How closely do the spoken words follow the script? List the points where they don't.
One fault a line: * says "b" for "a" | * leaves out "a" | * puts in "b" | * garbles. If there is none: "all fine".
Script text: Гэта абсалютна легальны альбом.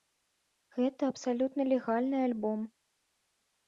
all fine